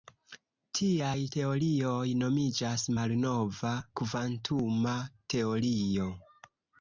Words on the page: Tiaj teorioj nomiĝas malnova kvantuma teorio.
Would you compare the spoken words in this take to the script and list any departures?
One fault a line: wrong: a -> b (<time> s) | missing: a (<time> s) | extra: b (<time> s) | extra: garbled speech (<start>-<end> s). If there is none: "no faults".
no faults